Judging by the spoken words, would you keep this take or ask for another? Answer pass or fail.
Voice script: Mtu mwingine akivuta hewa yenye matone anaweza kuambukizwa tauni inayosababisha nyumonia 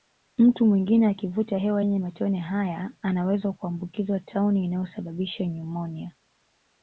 fail